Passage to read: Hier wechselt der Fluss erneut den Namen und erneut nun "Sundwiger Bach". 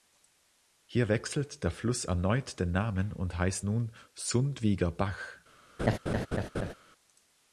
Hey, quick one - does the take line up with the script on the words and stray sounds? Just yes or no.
no